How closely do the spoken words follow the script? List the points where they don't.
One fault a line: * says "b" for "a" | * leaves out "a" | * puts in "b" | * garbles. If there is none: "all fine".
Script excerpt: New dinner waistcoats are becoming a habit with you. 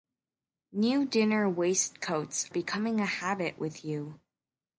* leaves out "are"